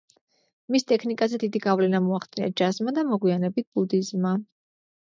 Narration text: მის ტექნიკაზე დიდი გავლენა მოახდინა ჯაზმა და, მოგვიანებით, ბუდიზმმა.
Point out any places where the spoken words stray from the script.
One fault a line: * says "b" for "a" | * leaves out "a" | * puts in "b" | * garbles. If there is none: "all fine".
all fine